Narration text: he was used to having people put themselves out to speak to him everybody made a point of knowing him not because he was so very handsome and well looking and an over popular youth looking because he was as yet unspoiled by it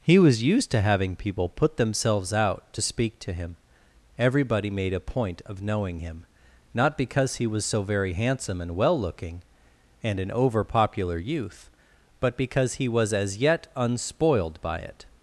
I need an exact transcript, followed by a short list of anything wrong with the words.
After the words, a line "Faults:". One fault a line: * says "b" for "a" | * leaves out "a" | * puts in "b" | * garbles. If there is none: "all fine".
he was used to having people put themselves out to speak to him everybody made a point of knowing him not because he was so very handsome and well looking and an over popular youth but because he was as yet unspoiled by it
Faults:
* says "but" for "looking"